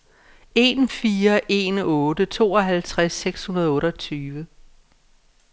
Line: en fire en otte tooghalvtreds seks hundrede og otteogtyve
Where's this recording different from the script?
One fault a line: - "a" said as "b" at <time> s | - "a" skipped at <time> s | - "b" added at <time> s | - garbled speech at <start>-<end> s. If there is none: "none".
none